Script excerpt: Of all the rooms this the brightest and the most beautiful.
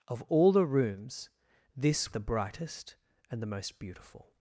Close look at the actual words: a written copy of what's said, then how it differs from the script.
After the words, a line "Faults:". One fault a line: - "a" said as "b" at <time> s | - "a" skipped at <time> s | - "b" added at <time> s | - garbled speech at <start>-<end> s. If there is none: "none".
Of all the rooms this the brightest and the most beautiful.
Faults:
none